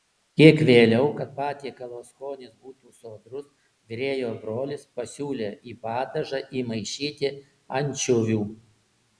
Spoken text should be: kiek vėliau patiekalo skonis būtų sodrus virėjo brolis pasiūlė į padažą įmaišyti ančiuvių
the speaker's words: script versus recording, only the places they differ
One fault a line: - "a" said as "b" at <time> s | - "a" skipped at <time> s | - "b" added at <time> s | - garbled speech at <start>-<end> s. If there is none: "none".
- "kad" added at 1.2 s